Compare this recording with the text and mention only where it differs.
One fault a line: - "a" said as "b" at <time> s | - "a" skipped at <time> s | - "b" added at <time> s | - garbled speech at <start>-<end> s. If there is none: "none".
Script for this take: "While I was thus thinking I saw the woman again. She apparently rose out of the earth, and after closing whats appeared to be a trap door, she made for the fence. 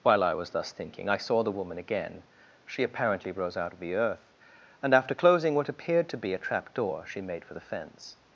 - "whats" said as "what" at 5.5 s